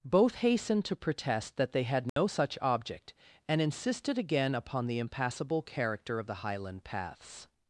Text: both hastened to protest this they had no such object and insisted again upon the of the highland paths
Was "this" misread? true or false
true